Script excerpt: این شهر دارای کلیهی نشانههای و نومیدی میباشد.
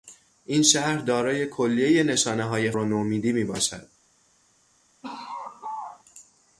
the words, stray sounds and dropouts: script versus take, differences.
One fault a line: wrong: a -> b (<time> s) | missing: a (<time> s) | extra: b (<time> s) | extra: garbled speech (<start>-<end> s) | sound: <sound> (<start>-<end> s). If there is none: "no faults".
sound: laugh (5.0-6.0 s)